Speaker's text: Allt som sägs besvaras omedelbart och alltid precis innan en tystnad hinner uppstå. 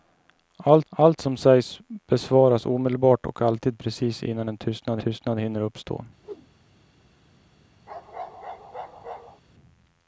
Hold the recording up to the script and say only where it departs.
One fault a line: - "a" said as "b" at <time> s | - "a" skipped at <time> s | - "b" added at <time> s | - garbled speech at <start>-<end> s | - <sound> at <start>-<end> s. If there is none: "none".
- "allt" added at 0.9 s
- "tystnad" added at 5.0 s
- whoosh at 6.2-6.5 s
- bark at 7.9-9.4 s